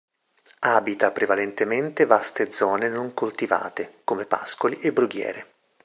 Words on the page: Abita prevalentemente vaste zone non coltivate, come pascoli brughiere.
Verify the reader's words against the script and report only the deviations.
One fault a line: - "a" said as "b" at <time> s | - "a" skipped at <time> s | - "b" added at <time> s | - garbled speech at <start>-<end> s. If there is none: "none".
- "e" added at 4.8 s